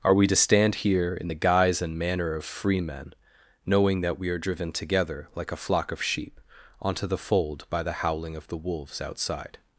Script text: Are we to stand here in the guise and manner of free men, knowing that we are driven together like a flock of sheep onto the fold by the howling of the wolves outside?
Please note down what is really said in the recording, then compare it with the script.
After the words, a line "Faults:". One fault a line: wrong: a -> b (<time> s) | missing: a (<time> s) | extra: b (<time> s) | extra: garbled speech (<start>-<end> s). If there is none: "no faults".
Are we to stand here in the guise and manner of free men, knowing that we are driven together like a flock of sheep onto the fold by the howling of the wolves outside?
Faults:
no faults